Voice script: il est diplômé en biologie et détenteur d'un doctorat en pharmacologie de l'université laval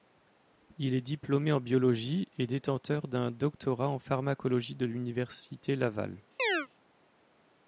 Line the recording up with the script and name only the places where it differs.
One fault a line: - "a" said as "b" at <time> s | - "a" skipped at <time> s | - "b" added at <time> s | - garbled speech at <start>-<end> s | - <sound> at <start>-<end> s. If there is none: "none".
- chirp at 6.4-6.7 s